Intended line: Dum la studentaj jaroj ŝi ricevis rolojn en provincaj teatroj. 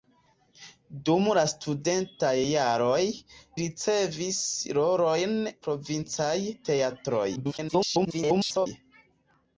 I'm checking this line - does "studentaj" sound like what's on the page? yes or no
yes